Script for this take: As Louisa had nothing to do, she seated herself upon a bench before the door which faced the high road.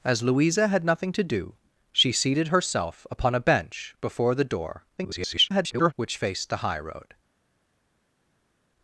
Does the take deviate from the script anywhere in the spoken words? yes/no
yes